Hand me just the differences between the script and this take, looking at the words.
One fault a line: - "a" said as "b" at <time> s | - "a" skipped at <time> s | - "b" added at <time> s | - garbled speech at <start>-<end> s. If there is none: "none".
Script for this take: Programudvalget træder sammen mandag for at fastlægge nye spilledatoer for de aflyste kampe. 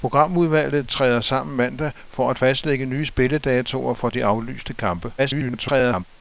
- garbled speech at 5.2-6.1 s